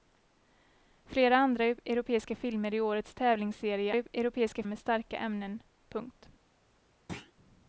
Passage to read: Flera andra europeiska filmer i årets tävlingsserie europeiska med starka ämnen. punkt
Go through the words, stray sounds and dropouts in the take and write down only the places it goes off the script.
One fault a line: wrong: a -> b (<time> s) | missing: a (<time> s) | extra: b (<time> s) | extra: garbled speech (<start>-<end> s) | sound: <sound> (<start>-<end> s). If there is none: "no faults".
sound: thud (7.1-7.3 s)